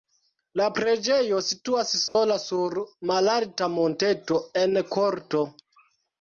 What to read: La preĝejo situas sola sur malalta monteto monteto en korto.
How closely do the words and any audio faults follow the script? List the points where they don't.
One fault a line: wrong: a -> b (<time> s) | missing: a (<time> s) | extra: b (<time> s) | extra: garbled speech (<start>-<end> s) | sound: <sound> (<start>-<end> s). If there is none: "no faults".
sound: dropout (2.1-2.2 s)
missing: monteto (4.4 s)